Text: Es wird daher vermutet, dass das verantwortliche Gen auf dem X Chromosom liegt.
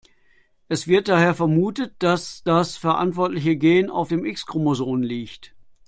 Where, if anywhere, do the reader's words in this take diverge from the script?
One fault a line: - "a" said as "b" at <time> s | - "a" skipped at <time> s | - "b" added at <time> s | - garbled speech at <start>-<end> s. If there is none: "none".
none